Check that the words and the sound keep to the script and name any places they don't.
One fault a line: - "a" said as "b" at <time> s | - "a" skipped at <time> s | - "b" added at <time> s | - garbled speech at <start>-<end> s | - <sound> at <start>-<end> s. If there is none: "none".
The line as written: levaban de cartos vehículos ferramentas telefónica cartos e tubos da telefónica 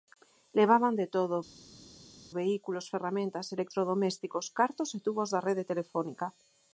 - "cartos" said as "todo" at 1.1 s
- "telefónica" said as "electrodomésticos" at 3.6 s
- "rede" added at 5.5 s